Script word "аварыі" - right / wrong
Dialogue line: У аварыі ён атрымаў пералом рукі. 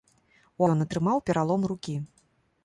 wrong